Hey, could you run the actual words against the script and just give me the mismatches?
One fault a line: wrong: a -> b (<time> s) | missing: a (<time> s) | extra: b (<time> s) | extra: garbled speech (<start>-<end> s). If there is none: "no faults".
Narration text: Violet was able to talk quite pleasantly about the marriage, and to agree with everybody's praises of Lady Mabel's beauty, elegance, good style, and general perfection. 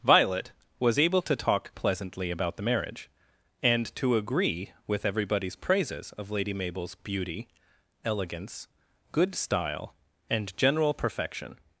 missing: quite (1.8 s)